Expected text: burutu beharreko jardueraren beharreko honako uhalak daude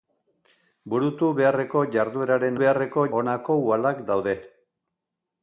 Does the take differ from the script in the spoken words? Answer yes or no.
no